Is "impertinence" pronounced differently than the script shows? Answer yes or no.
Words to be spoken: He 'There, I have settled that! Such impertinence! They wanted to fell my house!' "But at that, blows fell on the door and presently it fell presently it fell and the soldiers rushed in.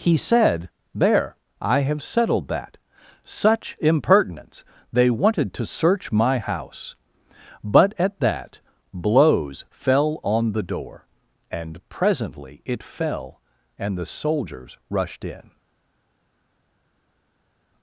no